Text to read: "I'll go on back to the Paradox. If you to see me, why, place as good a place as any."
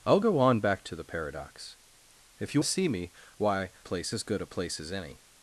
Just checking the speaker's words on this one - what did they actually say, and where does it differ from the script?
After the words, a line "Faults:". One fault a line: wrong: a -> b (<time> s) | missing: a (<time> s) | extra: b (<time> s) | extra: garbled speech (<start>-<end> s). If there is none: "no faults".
"I'll go on back to the Paradox. If you to see me, why, place as good a place as any."
Faults:
no faults